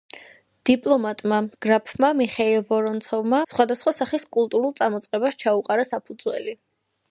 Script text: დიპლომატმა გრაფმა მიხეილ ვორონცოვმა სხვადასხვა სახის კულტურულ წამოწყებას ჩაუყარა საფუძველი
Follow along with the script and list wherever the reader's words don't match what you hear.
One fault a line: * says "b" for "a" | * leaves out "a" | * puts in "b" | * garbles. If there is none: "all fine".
all fine